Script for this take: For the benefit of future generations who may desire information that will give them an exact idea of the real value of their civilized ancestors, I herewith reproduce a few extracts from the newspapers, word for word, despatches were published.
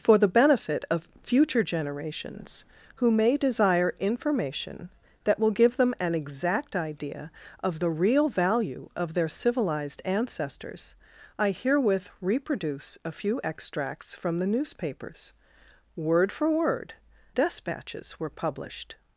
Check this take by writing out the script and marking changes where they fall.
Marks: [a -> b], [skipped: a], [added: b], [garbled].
For the benefit of future generations who may desire information that will give them an exact idea of the real value of their civilized ancestors, I herewith reproduce a few extracts from the newspapers, word for word, despatches were published.